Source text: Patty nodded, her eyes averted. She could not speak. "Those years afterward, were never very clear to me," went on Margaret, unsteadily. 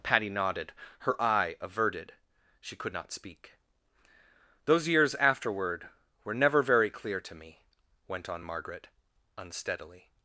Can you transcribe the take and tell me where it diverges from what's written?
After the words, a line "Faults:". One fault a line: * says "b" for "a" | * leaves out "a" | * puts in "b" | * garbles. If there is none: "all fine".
Patty nodded, her eye averted. She could not speak. "Those years afterward, were never very clear to me," went on Margaret, unsteadily.
Faults:
* says "eye" for "eyes"